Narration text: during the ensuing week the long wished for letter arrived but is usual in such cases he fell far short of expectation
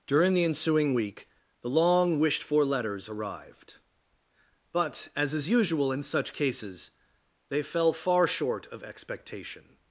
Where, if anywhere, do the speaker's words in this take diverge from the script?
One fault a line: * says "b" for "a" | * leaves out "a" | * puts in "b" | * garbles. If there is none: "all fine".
* says "letters" for "letter"
* puts in "as"
* says "they" for "he"